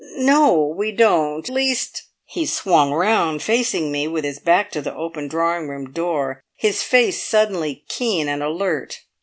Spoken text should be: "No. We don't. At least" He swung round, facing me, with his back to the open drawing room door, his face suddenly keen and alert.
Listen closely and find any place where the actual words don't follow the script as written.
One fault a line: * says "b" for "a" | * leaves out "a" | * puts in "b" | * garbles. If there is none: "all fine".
* leaves out "At"